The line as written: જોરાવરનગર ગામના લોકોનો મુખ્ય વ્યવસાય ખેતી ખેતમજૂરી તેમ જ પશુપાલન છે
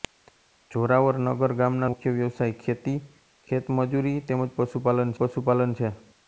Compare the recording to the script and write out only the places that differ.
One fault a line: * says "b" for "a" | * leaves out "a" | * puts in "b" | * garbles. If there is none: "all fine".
* leaves out "લોકોનો"
* puts in "પશુપાલન"